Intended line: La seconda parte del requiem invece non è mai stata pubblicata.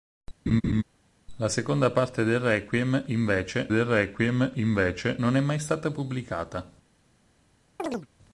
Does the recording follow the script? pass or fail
fail